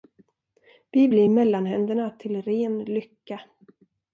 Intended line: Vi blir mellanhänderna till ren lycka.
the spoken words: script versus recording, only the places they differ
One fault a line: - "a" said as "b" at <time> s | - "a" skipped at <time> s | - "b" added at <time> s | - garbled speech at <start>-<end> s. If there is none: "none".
none